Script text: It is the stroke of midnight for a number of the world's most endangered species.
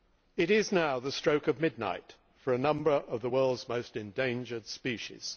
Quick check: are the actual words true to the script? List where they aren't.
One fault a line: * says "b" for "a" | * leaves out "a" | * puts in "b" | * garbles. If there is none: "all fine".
* puts in "now"